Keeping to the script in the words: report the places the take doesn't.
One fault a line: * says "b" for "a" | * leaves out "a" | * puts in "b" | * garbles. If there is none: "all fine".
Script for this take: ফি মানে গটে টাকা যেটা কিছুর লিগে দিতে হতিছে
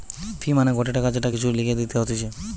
all fine